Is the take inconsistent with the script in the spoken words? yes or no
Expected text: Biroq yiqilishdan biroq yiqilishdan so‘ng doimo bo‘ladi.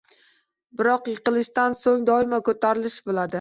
yes